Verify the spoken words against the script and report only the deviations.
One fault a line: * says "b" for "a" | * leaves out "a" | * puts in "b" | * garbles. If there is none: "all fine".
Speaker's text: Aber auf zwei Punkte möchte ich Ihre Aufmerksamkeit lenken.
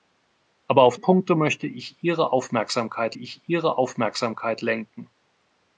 * leaves out "zwei"
* puts in "ich Ihre Aufmerksamkeit"